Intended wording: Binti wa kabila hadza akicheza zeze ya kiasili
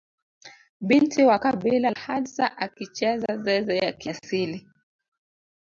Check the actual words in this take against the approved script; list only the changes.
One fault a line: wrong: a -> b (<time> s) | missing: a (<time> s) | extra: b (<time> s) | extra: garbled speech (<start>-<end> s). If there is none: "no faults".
no faults